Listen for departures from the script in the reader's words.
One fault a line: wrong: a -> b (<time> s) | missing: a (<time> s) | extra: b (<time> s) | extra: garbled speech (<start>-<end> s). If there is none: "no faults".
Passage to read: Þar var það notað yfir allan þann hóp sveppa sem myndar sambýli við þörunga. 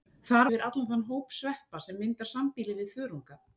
missing: var það notað (0.5 s)